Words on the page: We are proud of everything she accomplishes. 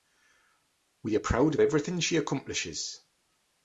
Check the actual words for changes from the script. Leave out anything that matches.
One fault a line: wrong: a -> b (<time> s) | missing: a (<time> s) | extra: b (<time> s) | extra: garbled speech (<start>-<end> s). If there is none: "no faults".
no faults